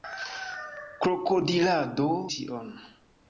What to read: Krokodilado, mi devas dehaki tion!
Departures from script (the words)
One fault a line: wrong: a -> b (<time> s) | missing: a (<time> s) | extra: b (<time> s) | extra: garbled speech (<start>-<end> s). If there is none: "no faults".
missing: mi devas dehaki (2.1 s)